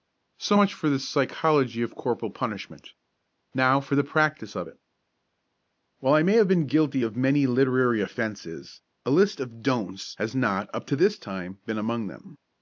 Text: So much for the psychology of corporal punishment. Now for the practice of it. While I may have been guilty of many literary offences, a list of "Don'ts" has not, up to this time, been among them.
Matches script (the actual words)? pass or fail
pass